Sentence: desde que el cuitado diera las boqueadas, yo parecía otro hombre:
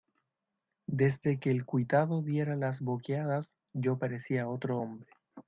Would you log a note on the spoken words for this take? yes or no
no